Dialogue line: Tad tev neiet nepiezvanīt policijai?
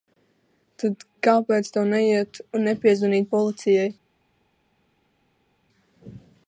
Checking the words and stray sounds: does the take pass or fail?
fail